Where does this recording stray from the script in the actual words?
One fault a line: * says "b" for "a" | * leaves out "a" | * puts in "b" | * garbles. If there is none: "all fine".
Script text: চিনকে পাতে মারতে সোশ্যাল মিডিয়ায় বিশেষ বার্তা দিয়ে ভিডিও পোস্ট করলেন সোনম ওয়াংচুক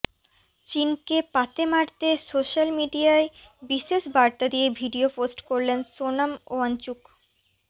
all fine